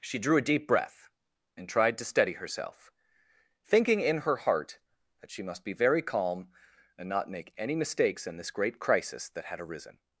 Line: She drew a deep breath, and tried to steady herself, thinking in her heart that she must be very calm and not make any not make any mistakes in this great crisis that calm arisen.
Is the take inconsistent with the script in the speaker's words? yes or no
yes